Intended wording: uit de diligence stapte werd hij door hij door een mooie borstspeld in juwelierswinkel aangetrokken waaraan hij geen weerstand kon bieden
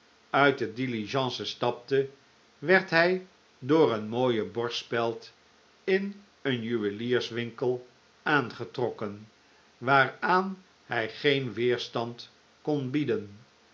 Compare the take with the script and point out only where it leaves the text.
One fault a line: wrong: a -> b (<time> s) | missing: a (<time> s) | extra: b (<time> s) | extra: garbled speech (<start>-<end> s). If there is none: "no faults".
missing: hij door (3.9 s)
extra: een (6.4 s)